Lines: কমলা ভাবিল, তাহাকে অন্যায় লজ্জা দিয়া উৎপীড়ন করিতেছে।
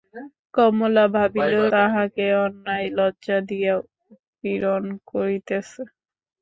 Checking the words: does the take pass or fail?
pass